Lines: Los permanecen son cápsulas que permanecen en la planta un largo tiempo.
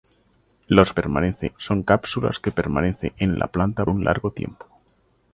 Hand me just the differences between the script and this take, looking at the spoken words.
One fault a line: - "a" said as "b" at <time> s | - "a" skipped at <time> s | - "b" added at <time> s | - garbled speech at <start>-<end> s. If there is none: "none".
none